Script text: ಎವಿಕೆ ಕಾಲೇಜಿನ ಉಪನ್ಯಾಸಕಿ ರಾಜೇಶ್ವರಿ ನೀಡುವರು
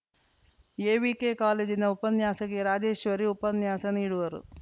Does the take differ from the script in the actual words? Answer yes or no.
yes